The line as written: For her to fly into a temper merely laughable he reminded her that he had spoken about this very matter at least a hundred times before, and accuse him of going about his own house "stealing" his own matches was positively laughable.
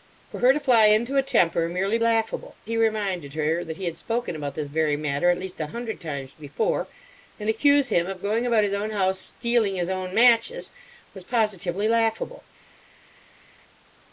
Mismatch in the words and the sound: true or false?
false